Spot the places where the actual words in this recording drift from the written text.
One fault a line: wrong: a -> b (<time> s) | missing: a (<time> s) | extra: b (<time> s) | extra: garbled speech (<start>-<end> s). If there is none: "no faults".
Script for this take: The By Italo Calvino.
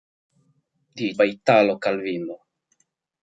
no faults